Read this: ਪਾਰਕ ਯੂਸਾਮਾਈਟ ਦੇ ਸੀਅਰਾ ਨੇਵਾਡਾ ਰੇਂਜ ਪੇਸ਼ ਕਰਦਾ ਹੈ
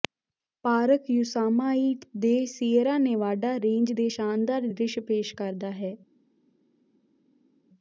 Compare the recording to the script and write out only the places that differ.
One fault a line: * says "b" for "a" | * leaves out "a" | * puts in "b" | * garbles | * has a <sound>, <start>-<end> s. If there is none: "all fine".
* puts in "ਦੇ ਸ਼ਾਨਦਾਰ ਦ੍ਰਿਸ਼"